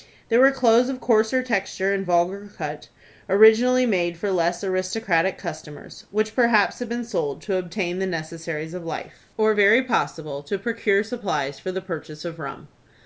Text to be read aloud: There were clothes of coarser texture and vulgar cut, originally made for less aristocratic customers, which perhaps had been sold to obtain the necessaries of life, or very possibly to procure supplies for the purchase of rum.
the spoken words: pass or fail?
pass